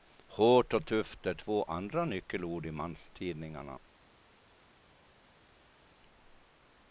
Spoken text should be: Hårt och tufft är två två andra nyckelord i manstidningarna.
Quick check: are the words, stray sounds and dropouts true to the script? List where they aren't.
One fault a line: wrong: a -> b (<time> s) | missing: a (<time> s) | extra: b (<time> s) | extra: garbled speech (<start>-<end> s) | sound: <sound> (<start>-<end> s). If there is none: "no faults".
missing: två (1.6 s)